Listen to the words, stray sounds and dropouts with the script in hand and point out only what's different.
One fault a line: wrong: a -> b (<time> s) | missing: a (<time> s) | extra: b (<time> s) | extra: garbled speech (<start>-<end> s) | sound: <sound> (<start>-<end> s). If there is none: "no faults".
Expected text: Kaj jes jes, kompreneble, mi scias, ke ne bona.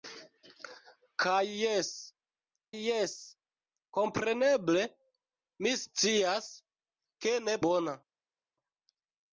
no faults